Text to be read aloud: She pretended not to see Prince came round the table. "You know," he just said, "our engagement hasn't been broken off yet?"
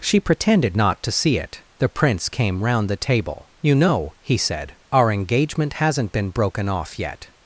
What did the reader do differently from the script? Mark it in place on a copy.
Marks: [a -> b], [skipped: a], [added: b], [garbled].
She pretended not to see [added: it The] Prince came round the table. "You know," he [skipped: just] said, "our engagement hasn't been broken off yet?"